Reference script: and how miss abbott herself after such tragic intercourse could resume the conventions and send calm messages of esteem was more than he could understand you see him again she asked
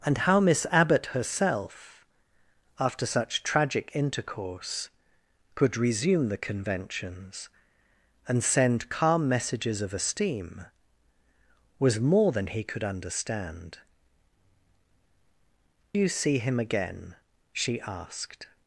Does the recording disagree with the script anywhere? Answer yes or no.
no